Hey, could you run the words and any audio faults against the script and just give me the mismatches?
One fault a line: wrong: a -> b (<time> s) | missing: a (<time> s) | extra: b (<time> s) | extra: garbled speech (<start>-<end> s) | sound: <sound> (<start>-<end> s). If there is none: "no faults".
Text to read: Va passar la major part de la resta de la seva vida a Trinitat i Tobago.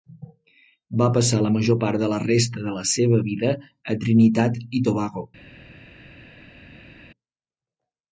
no faults